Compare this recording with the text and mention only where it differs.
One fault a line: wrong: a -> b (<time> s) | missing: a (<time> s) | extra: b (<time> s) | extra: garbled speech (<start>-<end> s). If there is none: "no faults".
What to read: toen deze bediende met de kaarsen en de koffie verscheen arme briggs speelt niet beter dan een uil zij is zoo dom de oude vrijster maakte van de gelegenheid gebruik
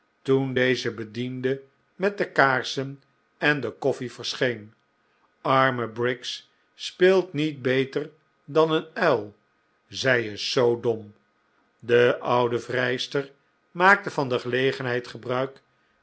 no faults